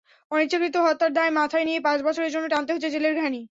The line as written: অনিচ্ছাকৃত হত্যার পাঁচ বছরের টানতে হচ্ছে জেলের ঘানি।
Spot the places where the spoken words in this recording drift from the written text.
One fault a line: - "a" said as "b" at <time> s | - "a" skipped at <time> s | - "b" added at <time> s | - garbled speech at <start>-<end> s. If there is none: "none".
- "দায় মাথায় নিয়ে" added at 1.1 s
- "জন্য" added at 2.3 s